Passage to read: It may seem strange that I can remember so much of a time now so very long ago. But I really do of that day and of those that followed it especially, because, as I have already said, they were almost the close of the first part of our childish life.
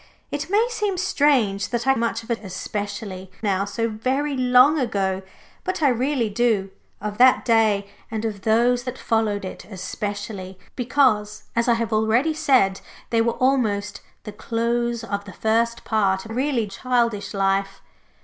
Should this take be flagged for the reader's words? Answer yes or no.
yes